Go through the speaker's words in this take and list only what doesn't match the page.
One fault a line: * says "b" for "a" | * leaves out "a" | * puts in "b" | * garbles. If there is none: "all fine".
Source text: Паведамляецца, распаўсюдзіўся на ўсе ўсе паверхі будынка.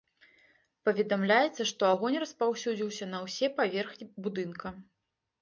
* puts in "што агонь"
* leaves out "ўсе"